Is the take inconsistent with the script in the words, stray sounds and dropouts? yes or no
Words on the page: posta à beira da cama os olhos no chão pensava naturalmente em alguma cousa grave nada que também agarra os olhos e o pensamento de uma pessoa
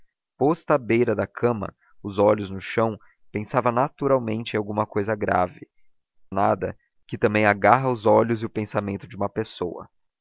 no